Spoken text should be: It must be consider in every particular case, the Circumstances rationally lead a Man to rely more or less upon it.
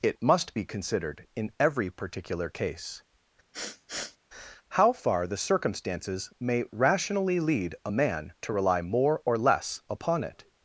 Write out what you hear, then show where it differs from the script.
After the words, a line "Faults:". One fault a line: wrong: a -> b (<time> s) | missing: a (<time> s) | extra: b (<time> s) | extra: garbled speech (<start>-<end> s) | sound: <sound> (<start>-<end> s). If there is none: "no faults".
It must be considered in every particular case, how far the Circumstances may rationally lead a Man to rely more or less upon it.
Faults:
wrong: consider -> considered (0.6 s)
sound: sniff (3.5-4.2 s)
extra: how far (4.7 s)
extra: may (6.4 s)